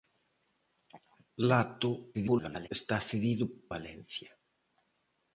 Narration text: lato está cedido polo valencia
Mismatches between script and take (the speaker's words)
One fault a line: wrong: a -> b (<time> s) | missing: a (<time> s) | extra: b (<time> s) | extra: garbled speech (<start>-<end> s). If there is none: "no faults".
extra: garbled speech (2.1-2.7 s)
missing: polo (3.4 s)